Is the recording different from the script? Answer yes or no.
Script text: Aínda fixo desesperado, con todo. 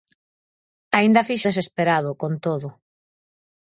no